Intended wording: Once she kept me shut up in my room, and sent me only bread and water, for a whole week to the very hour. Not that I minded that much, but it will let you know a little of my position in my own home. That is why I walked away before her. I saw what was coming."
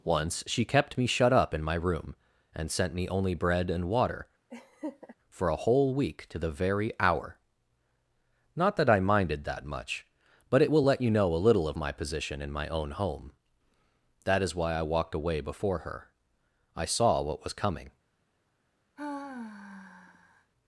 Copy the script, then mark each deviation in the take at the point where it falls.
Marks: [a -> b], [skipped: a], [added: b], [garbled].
Once she kept me shut up in my room, and sent me only bread and water, for a whole week to the very hour. Not that I minded that much, but it will let you know a little of my position in my own home. That is why I walked away before her. I saw what was coming."